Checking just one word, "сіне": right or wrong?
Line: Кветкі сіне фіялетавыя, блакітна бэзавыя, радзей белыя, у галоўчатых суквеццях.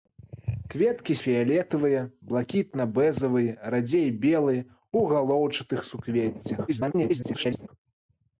wrong